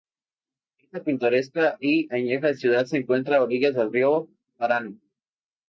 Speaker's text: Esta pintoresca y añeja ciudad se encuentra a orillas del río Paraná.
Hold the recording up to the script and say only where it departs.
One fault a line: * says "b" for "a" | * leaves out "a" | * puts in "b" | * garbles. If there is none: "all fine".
all fine